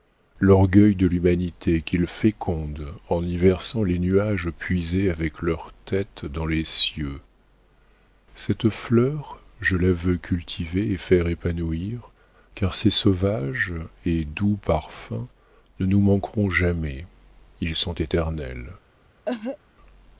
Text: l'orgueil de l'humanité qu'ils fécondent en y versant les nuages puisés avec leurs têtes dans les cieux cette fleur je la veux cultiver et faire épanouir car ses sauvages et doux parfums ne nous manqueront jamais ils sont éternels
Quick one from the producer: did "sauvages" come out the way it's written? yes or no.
yes